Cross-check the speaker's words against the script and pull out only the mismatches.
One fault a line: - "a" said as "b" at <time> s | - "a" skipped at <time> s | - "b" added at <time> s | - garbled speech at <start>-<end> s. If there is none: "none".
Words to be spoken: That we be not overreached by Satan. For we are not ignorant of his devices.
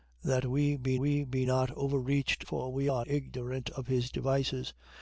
- "we be" added at 0.9 s
- "by Satan" skipped at 2.5 s
- "not" skipped at 3.0 s